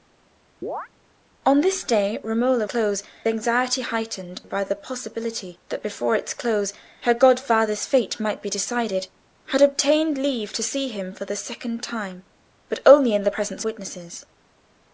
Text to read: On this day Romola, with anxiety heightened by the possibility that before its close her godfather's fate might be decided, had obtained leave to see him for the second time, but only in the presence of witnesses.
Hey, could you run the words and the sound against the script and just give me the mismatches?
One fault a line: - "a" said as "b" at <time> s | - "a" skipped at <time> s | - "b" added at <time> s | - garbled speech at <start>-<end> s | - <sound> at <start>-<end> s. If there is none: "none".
- chirp at 0.6-0.9 s
- "with" said as "close" at 2.6 s
- "of" skipped at 13.6 s